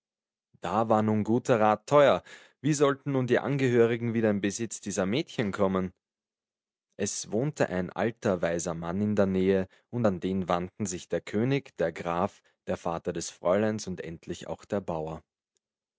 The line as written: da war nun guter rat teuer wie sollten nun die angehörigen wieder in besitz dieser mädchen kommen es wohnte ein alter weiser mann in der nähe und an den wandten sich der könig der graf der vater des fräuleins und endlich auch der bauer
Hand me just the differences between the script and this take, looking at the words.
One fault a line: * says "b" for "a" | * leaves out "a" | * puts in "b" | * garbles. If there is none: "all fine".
all fine